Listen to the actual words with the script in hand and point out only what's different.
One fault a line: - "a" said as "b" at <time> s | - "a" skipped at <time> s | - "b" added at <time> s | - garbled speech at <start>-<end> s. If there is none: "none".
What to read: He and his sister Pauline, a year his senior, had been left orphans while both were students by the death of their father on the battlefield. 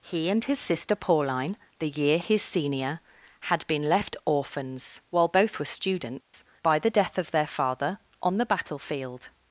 - "a" said as "the" at 1.8 s